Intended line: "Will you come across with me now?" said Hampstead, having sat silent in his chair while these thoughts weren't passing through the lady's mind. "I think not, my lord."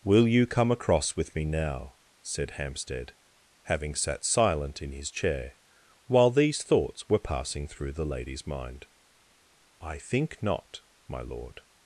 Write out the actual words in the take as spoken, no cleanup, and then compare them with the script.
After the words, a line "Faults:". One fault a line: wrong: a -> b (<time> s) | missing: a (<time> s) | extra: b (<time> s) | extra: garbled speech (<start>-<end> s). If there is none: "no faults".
"Will you come across with me now?" said Hampstead, having sat silent in his chair while these thoughts were passing through the lady's mind. "I think not, my lord."
Faults:
wrong: weren't -> were (7.1 s)